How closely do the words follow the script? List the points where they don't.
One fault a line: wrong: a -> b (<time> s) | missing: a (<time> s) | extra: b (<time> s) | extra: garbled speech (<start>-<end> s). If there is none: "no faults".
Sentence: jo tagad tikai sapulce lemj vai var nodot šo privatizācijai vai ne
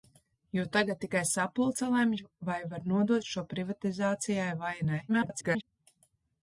extra: garbled speech (5.1-5.6 s)